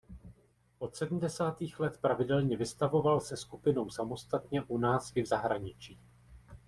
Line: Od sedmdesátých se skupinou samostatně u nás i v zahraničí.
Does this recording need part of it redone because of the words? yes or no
yes